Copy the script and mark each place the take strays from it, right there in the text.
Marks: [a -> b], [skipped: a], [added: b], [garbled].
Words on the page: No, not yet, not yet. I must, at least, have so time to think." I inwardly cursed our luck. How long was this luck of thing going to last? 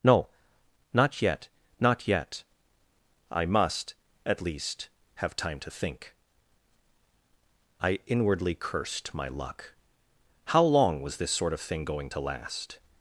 No, not yet, not yet. I must, at least, have [skipped: so] time to think." I inwardly cursed [our -> my] luck. How long was this [luck -> sort] of thing going to last?